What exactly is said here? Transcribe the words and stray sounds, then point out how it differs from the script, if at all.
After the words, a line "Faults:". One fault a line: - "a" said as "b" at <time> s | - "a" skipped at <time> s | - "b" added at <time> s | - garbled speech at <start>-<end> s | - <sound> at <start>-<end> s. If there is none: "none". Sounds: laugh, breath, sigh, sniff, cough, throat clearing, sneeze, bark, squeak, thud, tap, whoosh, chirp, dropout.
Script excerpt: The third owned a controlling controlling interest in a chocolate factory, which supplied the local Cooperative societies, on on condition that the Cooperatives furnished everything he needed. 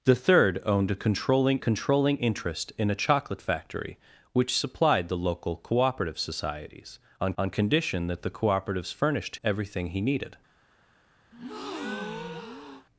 The third owned a controlling controlling interest in a chocolate factory, which supplied the local Cooperative societies, on on condition that the Cooperatives furnished everything he needed.
Faults:
- breath at 11.3-12.9 s